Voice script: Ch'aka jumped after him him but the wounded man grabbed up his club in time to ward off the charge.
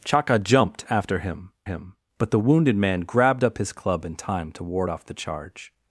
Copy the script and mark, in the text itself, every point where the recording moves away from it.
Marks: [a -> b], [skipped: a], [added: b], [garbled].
Ch'aka jumped after him him but the wounded man grabbed up his club in time to ward off the charge.